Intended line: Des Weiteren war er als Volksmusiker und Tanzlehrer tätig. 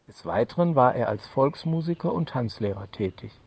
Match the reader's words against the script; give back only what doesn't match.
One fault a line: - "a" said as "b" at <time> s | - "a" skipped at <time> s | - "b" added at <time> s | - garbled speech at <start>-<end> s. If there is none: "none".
none